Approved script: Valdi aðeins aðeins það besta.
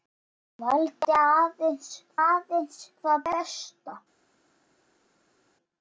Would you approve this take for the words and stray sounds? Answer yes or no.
yes